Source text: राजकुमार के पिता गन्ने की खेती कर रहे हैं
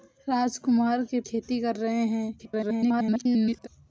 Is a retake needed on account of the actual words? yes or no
yes